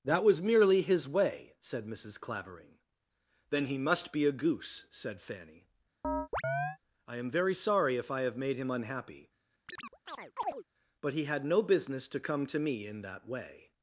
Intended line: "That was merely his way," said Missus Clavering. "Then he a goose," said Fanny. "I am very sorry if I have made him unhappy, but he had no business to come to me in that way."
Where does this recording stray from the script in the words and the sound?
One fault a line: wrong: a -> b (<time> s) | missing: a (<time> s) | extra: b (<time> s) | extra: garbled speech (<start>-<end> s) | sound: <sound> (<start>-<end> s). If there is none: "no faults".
extra: must be (3.8 s)
sound: chirp (6.0-6.8 s)
sound: chirp (9.7-10.6 s)